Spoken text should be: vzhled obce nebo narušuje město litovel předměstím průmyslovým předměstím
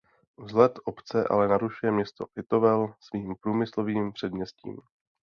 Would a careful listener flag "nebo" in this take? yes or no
yes